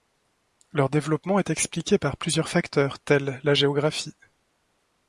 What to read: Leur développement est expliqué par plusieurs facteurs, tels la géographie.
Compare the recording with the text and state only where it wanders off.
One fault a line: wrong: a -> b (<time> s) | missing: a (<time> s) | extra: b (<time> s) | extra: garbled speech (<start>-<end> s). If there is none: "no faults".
no faults